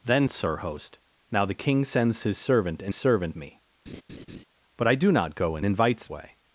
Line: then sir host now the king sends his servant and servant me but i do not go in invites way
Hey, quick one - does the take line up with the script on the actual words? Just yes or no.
yes